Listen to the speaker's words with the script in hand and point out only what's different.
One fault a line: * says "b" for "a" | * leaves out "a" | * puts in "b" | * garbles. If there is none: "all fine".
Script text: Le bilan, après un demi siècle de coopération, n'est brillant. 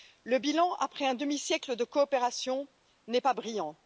* puts in "pas"